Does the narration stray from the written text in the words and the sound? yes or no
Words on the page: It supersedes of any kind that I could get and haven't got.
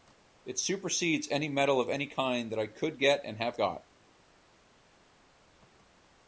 yes